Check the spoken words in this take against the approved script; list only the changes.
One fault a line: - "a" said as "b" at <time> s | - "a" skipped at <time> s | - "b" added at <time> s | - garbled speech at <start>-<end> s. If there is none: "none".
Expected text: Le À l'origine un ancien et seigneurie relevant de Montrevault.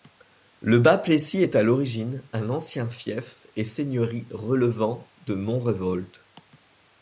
- "Bas Plessis est" added at 0.8 s
- "fief" added at 2.9 s